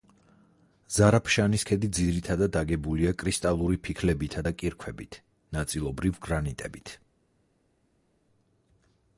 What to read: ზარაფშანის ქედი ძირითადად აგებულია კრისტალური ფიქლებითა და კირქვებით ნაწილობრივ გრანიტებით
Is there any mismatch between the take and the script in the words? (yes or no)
no